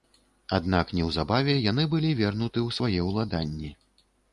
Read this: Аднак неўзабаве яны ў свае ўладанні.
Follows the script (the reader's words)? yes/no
no